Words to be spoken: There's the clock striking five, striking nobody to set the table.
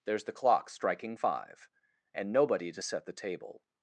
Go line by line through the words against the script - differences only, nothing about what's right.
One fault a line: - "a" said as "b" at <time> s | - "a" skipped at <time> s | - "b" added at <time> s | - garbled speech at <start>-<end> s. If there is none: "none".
- "striking" said as "and" at 2.1 s